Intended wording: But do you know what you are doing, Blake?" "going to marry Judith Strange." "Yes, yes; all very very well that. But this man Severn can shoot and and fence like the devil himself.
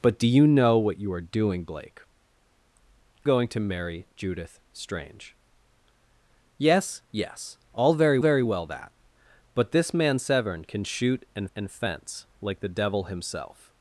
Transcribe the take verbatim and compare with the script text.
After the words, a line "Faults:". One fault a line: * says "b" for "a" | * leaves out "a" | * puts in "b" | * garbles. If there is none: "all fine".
But do you know what you are doing, Blake?" "going to marry Judith Strange." "Yes, yes; all very very well that. But this man Severn can shoot and and fence like the devil himself.
Faults:
all fine